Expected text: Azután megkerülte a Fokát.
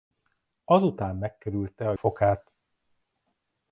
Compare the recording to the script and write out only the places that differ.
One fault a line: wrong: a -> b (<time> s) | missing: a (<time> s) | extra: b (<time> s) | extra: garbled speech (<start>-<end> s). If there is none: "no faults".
no faults